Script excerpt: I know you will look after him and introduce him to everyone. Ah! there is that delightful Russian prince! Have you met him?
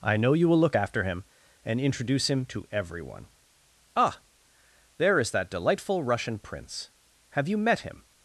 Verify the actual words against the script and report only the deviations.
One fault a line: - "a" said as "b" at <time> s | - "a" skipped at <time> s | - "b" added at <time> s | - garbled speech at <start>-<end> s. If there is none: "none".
none